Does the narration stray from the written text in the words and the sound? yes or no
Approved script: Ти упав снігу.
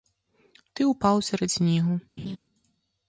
yes